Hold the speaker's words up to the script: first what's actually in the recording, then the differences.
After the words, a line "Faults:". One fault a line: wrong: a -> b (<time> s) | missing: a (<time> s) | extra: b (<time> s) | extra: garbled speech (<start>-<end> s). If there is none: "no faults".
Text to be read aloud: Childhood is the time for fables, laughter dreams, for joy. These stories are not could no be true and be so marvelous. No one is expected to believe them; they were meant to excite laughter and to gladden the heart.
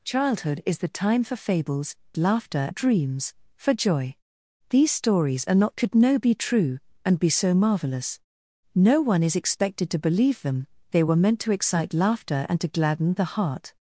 Childhood is the time for fables, laughter dreams, for joy. These stories are not could no be true and be so marvelous. No one is expected to believe them; they were meant to excite laughter and to gladden the heart.
Faults:
no faults